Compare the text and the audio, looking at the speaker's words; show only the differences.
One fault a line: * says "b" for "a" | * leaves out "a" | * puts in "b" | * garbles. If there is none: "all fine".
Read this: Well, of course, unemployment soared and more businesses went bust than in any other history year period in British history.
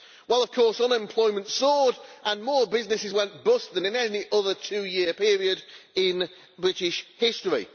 * says "two" for "history"